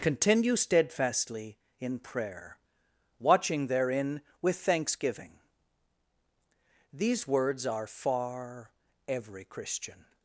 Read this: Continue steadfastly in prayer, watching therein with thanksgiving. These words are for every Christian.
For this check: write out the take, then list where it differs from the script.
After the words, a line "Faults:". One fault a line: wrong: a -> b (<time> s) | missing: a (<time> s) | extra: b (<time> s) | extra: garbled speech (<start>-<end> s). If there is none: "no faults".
Continue steadfastly in prayer, watching therein with thanksgiving. These words are far every Christian.
Faults:
wrong: for -> far (7.9 s)